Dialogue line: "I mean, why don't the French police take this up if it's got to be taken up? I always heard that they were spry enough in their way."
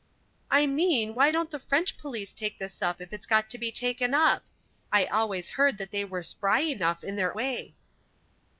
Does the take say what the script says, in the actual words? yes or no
yes